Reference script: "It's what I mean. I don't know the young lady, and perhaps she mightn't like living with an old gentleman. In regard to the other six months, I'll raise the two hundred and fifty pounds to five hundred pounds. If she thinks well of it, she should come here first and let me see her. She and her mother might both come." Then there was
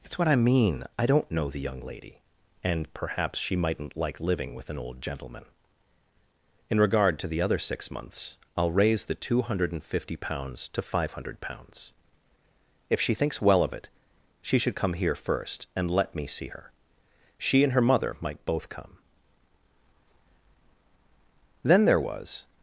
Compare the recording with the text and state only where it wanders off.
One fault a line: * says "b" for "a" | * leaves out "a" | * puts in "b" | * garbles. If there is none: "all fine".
all fine